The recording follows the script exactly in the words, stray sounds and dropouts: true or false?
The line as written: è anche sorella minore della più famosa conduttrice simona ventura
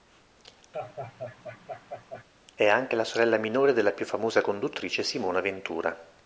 false